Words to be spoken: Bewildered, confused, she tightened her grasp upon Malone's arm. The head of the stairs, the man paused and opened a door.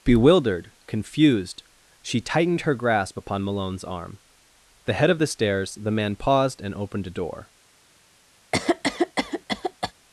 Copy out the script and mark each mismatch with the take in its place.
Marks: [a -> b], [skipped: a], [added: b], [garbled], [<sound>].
Bewildered, confused, she tightened her grasp upon Malone's arm. The head of the stairs, the man paused and opened a door. [cough]